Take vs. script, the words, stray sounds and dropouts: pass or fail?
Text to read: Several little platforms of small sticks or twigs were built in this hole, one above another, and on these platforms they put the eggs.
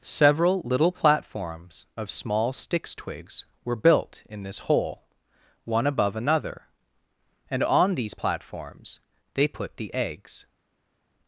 fail